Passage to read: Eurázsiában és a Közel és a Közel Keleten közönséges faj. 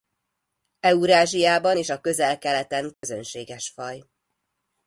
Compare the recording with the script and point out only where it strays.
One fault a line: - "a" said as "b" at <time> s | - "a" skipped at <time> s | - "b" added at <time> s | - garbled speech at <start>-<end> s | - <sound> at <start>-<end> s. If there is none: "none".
- "és a Közel" skipped at 2.4 s
- dropout at 2.9-3.0 s